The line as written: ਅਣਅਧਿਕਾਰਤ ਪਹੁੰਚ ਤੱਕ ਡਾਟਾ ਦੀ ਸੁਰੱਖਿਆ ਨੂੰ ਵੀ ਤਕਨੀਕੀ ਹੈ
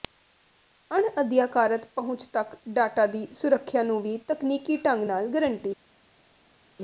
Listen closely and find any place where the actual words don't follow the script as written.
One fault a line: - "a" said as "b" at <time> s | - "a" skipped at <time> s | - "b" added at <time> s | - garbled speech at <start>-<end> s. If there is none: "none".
- "ਢੰਗ ਨਾਲ ਗਰੰਟੀ" added at 4.8 s